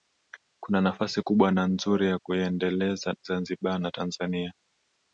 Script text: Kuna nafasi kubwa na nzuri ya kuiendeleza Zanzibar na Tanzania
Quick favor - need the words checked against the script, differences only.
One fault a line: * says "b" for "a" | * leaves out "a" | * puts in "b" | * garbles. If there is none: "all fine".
all fine